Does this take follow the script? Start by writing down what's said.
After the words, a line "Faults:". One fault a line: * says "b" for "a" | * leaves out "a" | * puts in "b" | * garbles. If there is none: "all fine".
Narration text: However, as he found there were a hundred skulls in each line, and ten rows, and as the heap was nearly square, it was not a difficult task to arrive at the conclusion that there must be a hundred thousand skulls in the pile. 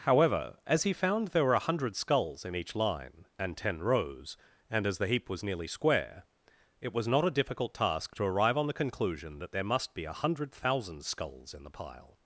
However, as he found there were a hundred skulls in each line, and ten rows, and as the heap was nearly square, it was not a difficult task to arrive on the conclusion that there must be a hundred thousand skulls in the pile.
Faults:
* says "on" for "at"